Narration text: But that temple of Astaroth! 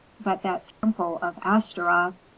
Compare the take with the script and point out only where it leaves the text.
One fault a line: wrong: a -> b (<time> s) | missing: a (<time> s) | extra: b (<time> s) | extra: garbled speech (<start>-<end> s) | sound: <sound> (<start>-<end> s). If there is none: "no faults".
sound: dropout (0.7-0.8 s)